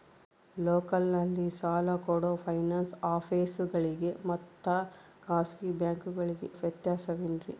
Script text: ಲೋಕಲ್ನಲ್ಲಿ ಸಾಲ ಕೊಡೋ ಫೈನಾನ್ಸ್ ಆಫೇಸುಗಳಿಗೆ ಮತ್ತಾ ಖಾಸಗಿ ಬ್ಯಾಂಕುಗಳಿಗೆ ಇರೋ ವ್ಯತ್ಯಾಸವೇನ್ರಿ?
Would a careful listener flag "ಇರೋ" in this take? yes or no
yes